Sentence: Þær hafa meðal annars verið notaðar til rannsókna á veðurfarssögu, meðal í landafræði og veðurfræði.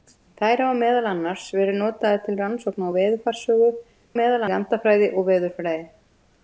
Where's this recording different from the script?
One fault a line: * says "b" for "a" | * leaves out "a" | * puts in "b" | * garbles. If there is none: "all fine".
all fine